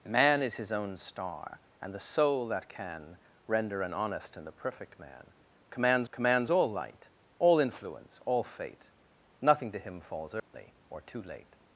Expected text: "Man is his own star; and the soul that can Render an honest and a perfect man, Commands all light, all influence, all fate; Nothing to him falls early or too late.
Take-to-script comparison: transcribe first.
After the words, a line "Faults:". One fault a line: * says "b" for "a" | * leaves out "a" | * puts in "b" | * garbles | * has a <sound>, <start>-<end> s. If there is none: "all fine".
"Man is his own star; and the soul that can Render an honest and a perfect man, Commands Commands all light, all influence, all fate; Nothing to him falls early or too late.
Faults:
* puts in "Commands"
* has a dropout, 10.4-10.5 s